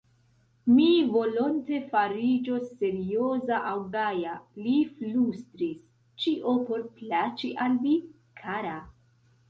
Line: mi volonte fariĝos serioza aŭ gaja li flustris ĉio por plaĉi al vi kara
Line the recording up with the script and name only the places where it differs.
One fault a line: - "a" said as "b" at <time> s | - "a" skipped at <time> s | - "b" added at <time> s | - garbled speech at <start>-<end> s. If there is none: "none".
none